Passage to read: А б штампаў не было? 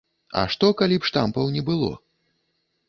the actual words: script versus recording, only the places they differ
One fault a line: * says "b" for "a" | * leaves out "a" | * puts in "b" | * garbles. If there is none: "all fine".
* puts in "што калі"